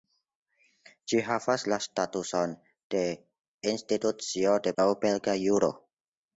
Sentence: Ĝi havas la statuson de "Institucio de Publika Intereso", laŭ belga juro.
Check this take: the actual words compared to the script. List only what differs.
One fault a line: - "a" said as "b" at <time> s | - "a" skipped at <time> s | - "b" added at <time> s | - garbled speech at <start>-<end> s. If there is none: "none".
- "Publika Intereso" skipped at 4.7 s